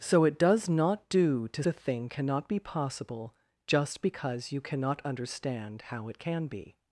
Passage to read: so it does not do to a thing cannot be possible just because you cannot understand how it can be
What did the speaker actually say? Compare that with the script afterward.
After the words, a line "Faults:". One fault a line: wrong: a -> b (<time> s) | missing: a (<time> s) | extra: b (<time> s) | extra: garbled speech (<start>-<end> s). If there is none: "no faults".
so it does not do to a thing cannot be possible just because you cannot understand how it can be
Faults:
no faults